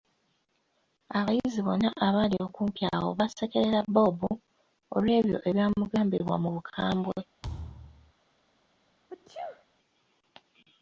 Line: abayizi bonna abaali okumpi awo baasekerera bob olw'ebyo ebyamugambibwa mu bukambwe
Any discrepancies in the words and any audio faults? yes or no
yes